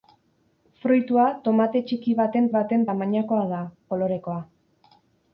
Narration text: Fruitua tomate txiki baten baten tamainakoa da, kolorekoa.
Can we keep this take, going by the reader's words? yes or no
yes